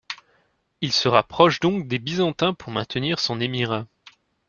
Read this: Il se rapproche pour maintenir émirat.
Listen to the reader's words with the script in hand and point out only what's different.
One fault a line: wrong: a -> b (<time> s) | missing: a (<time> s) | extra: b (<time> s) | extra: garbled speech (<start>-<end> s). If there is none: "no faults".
extra: donc des Byzantins (1.6 s)
extra: son (3.2 s)